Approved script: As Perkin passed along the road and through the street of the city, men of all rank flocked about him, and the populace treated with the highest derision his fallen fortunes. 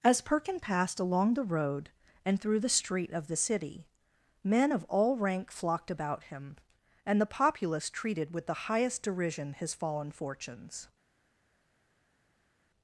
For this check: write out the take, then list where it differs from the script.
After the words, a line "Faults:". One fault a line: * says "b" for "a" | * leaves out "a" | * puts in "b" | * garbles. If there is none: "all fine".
As Perkin passed along the road and through the street of the city, men of all rank flocked about him, and the populace treated with the highest derision his fallen fortunes.
Faults:
all fine